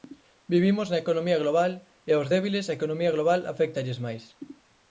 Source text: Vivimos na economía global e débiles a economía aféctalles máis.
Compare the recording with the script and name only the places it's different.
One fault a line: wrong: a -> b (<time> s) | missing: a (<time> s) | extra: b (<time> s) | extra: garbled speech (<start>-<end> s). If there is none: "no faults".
extra: aos (2.1 s)
extra: global (3.2 s)